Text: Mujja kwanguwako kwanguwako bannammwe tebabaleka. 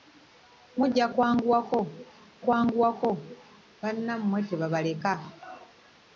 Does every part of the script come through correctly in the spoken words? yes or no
yes